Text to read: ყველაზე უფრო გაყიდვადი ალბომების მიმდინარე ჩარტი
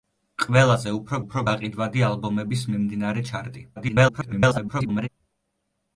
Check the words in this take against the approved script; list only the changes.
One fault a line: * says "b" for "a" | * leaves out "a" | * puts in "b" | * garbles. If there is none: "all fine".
* puts in "უფრო"
* garbles